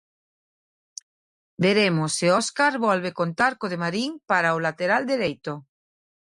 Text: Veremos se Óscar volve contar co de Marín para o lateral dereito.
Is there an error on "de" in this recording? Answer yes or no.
no